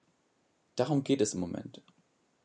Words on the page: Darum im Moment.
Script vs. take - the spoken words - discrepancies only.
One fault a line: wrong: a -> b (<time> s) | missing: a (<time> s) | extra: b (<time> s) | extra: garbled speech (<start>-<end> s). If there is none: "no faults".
extra: geht es (1.0 s)